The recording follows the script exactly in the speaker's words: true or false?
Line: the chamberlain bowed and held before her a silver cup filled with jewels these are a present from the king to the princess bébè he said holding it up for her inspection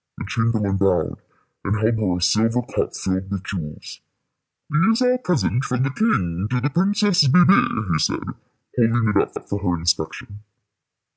false